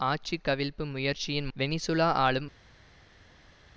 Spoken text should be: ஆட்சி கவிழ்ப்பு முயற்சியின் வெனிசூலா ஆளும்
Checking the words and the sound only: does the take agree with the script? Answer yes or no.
yes